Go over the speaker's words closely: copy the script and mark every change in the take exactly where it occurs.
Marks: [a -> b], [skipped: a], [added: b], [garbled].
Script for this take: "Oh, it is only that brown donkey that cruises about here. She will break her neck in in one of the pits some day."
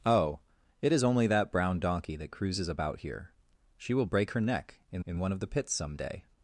"Oh, it is only that brown donkey that cruises about here. She will break her neck in in one of the pits some day."